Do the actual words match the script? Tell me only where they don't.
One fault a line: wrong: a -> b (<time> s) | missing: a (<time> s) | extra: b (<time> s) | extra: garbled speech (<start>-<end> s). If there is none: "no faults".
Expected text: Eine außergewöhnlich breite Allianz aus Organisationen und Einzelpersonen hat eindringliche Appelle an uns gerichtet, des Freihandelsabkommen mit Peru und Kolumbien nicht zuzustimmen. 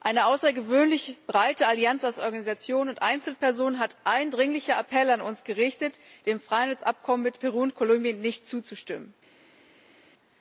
wrong: des -> dem (6.3 s)